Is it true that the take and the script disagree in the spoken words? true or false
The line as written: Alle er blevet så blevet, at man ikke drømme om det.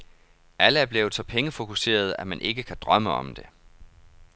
true